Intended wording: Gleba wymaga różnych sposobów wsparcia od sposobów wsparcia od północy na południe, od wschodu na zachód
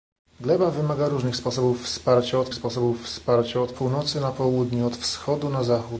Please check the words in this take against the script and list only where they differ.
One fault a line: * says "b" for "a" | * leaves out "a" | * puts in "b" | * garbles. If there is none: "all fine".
all fine